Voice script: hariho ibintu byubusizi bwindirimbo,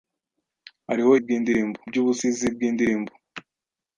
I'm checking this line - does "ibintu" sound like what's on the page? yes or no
no